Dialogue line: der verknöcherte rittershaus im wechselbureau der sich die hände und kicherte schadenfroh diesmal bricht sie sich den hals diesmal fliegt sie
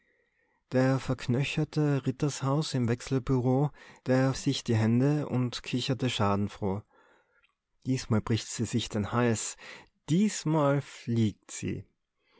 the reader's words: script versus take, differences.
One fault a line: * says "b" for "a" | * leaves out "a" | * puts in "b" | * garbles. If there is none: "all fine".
all fine